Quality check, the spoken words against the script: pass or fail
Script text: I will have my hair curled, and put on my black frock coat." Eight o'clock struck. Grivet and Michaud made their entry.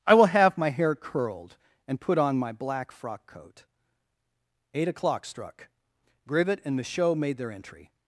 pass